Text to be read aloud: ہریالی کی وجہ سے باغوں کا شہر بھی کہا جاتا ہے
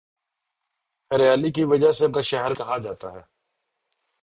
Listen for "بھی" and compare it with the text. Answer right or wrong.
wrong